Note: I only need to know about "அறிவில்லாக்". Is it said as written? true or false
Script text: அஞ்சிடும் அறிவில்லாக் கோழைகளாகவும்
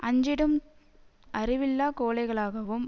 true